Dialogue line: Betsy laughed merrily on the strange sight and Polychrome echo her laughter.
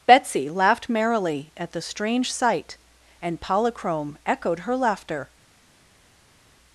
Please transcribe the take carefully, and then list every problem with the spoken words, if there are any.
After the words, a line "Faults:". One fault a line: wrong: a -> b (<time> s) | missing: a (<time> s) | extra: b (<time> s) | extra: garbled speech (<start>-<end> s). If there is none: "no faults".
Betsy laughed merrily at the strange sight and Polychrome echoed her laughter.
Faults:
wrong: on -> at (1.6 s)
wrong: echo -> echoed (4.3 s)